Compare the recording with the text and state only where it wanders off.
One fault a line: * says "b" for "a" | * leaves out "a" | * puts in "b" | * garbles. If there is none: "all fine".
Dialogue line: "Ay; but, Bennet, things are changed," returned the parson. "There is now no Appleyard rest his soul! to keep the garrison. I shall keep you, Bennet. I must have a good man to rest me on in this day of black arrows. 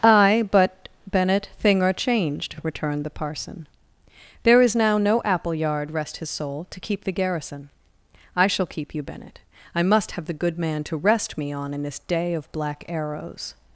* says "thing" for "things"
* says "the" for "a"